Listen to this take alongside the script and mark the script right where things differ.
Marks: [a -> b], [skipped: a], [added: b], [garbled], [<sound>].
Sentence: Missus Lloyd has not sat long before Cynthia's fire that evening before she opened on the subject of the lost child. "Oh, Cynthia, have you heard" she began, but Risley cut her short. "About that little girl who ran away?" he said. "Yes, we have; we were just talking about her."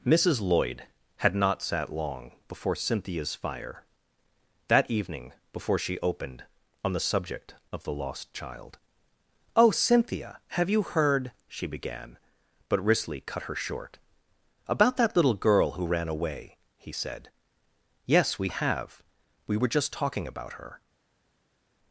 Missus Lloyd [has -> had] not sat long before Cynthia's fire that evening before she opened on the subject of the lost child. "Oh, Cynthia, have you heard" she began, but Risley cut her short. "About that little girl who ran away?" he said. "Yes, we have; we were just talking about her."